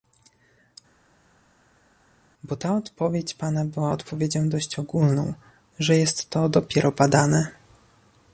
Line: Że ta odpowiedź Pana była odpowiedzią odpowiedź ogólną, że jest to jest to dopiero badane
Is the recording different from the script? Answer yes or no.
yes